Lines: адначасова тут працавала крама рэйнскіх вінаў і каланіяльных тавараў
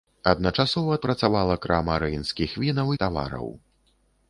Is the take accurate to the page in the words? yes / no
no